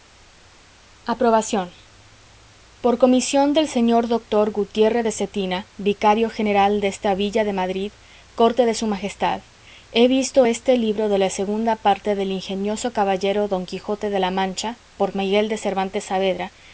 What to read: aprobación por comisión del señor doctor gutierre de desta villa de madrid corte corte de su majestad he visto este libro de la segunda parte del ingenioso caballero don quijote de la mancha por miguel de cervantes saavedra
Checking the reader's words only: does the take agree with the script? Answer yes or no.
no